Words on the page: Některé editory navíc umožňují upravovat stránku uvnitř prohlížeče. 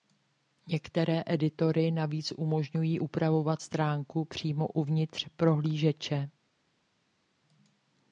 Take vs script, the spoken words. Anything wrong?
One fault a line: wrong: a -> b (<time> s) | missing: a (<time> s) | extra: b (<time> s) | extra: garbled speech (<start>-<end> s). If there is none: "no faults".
extra: přímo (4.2 s)